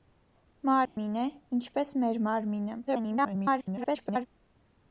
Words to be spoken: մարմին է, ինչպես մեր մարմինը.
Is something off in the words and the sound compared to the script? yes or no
yes